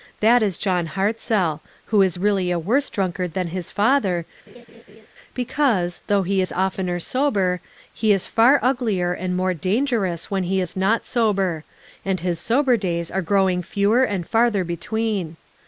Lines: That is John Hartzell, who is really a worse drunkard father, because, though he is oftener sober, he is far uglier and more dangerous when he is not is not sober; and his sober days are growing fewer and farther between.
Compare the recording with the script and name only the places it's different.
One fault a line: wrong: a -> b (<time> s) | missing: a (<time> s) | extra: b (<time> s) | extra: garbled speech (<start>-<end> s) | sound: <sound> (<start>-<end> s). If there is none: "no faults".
extra: than his (3.3 s)
sound: laugh (4.5-5.1 s)
missing: is not (11.1 s)